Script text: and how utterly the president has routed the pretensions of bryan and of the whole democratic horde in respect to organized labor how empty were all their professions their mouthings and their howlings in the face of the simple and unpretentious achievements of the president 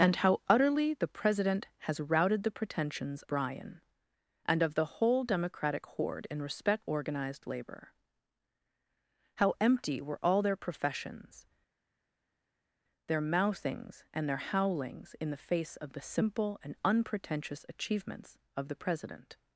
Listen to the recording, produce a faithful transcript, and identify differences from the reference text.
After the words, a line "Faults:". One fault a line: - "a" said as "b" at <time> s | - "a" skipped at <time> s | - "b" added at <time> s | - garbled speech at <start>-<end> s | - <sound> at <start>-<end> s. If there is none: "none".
and how utterly the president has routed the pretensions bryan and of the whole democratic horde in respect organized labor how empty were all their professions their mouthings and their howlings in the face of the simple and unpretentious achievements of the president
Faults:
- "of" skipped at 3.2 s
- "to" skipped at 6.9 s